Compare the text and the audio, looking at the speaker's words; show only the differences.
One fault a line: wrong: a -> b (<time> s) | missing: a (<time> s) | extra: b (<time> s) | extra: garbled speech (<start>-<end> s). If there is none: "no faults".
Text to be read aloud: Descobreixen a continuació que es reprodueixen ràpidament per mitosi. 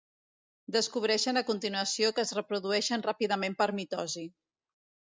no faults